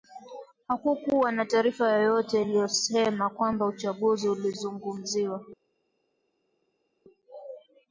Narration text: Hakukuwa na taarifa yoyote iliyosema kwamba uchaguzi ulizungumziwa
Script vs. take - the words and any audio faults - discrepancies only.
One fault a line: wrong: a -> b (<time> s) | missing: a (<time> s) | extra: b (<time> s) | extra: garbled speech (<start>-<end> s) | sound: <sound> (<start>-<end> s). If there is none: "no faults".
no faults